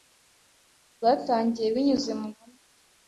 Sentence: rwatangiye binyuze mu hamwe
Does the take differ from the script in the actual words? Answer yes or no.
no